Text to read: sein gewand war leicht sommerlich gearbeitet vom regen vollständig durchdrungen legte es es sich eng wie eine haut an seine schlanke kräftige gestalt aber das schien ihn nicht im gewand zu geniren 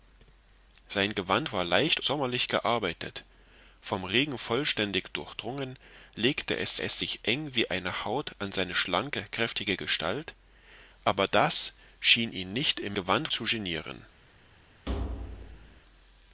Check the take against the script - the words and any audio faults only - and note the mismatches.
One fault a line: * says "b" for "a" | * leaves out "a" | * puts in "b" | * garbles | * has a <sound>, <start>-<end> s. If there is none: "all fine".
* has a thud, 14.9-15.8 s